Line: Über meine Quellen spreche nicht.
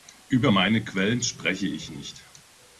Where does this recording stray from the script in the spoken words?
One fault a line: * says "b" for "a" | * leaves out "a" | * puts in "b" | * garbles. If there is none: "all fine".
* puts in "ich"